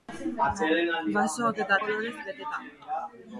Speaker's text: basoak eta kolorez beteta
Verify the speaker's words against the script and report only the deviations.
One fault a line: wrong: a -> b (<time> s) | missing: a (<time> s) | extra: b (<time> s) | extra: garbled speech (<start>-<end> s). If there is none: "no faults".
no faults